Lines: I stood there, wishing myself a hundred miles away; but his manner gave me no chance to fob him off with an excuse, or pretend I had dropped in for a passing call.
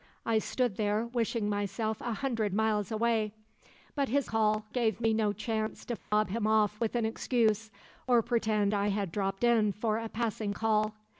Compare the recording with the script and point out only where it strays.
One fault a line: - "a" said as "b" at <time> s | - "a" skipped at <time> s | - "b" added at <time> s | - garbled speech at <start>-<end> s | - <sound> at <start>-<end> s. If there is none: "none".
- "manner" said as "call" at 4.2 s
- dropout at 6.0-6.1 s